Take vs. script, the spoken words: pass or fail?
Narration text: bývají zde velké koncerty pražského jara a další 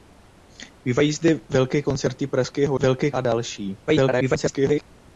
fail